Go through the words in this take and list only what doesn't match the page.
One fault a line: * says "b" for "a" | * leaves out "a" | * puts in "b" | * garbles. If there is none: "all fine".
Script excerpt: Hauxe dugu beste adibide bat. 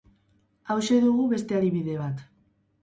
all fine